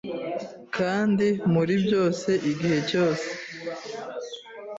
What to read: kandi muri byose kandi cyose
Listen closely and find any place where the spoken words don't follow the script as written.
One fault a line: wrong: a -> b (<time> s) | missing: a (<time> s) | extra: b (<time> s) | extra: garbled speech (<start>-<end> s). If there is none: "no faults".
wrong: kandi -> igihe (2.5 s)